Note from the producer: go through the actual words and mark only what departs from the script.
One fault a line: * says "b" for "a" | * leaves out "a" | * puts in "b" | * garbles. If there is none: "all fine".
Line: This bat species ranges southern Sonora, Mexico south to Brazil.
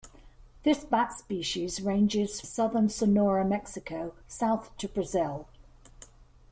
all fine